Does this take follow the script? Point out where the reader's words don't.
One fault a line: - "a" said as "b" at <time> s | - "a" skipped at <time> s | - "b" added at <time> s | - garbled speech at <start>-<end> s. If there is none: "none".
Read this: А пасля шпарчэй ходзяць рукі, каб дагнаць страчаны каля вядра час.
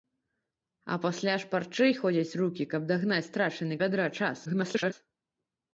- "каля" skipped at 3.8 s
- garbled speech at 4.4-4.9 s